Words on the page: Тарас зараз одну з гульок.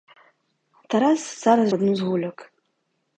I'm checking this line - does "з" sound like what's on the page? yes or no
yes